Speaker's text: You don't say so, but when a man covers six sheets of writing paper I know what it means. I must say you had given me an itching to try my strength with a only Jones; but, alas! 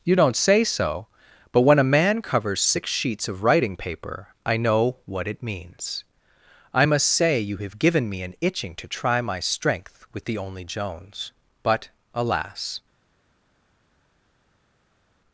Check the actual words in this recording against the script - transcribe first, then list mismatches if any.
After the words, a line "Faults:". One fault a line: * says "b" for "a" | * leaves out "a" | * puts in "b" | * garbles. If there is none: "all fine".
You don't say so, but when a man covers six sheets of writing paper I know what it means. I must say you have given me an itching to try my strength with the only Jones; but, alas!
Faults:
* says "have" for "had"
* says "the" for "a"